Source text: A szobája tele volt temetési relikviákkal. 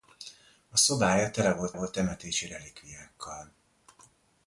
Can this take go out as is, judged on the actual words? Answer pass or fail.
fail